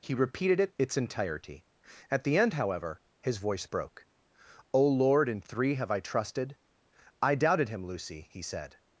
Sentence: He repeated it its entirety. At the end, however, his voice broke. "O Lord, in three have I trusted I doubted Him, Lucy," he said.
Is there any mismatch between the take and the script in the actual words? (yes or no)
no